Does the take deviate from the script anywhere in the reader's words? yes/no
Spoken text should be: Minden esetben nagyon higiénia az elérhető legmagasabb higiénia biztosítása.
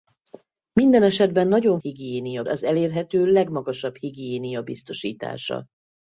no